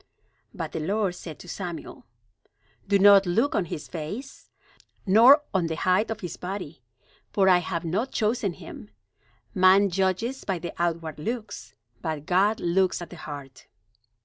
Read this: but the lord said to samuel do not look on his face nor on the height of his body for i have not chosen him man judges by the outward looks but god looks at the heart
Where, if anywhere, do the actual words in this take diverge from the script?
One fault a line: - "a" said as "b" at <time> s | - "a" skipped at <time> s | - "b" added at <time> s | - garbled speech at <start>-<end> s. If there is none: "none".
none